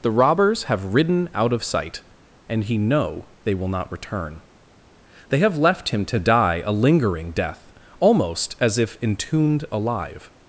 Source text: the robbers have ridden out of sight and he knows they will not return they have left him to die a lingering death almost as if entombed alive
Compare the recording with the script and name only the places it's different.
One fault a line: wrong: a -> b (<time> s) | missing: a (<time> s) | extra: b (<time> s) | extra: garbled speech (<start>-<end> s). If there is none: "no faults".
wrong: knows -> know (2.8 s)